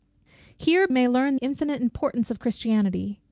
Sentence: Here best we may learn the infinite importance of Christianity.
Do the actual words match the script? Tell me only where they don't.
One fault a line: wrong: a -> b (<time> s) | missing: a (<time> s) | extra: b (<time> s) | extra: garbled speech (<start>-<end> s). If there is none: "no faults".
missing: best we (0.9 s)
missing: the (1.4 s)